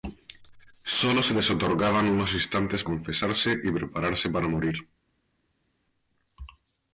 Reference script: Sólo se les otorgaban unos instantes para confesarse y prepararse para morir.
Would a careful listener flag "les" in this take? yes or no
no